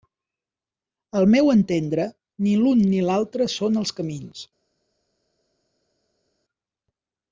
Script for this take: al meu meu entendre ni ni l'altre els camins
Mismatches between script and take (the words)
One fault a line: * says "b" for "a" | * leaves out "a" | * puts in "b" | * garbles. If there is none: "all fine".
* leaves out "meu"
* puts in "l'un"
* puts in "són"